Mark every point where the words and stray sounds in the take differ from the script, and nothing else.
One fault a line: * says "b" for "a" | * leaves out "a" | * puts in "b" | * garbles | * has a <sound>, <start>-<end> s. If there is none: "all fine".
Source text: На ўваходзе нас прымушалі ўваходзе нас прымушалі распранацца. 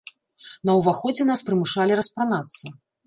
* leaves out "ўваходзе нас прымушалі"